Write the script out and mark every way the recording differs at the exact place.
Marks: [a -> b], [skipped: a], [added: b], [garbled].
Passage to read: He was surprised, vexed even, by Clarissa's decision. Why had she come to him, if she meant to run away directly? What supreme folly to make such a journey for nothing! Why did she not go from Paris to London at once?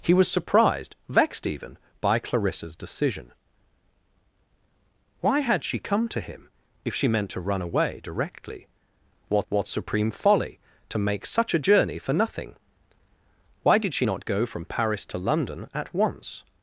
He was surprised, vexed even, by Clarissa's decision. Why had she come to him, if she meant to run away directly? What [added: what] supreme folly to make such a journey for nothing! Why did she not go from Paris to London at once?